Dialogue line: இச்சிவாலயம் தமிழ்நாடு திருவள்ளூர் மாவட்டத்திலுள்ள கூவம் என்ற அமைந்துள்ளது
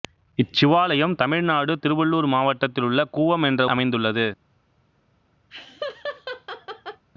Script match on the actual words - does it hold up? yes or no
yes